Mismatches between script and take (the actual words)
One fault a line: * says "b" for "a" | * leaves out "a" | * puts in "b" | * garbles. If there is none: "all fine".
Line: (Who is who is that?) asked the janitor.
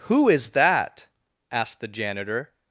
* leaves out "who is"